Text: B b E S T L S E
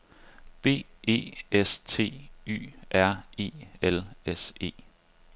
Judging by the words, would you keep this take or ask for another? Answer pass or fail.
fail